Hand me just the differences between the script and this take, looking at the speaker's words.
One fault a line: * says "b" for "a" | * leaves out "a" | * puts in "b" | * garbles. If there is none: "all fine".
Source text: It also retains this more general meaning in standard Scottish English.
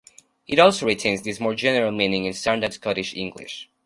all fine